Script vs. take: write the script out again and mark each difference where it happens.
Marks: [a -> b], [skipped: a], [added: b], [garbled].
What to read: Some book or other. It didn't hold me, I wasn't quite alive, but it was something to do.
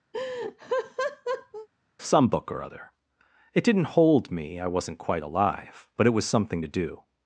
Some book or other. It didn't hold me, I wasn't quite alive, but it was something to do.